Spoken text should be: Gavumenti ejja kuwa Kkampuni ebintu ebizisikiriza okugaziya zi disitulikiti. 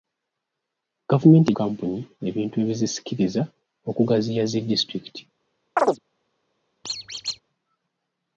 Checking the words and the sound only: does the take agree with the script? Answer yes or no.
no